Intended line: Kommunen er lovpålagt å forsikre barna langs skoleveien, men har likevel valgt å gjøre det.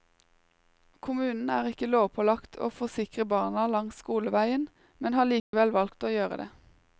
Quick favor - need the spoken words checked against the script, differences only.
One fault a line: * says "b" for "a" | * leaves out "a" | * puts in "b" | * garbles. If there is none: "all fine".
* puts in "ikke"